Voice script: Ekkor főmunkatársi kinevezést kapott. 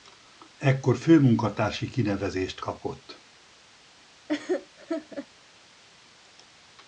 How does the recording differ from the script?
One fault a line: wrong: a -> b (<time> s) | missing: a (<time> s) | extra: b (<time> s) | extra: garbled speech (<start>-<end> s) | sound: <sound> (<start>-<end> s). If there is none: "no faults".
sound: laugh (4.3-5.3 s)